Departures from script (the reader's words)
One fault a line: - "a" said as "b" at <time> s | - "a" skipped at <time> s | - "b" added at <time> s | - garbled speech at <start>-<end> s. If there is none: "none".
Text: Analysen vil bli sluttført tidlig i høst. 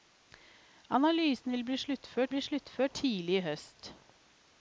- "bli sluttført" added at 2.3 s